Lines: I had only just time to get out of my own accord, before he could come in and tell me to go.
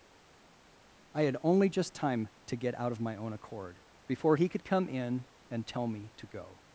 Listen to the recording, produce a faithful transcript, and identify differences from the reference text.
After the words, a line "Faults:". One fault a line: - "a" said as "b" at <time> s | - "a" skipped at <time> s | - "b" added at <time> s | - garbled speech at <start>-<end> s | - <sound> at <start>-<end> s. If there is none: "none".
I had only just time to get out of my own accord, before he could come in and tell me to go.
Faults:
none